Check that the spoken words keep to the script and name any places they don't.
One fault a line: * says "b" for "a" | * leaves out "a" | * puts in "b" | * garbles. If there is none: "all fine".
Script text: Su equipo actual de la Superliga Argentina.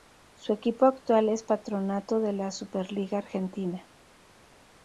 * puts in "es Patronato"